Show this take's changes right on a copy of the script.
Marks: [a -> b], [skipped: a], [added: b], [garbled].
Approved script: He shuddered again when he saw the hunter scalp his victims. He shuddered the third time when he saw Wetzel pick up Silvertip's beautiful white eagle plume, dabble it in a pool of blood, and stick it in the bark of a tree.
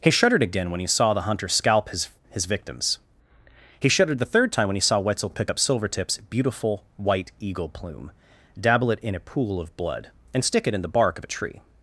He shuddered again when he saw the hunter scalp his [added: his] victims. He shuddered the third time when he saw Wetzel pick up Silvertip's beautiful white eagle plume, dabble it in a pool of blood, and stick it in the bark of a tree.